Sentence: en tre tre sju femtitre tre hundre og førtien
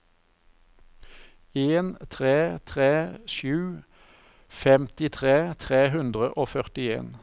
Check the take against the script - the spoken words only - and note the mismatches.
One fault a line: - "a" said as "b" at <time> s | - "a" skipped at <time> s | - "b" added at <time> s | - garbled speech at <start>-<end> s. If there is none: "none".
none